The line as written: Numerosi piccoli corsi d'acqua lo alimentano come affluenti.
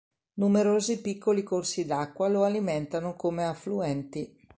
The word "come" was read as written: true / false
true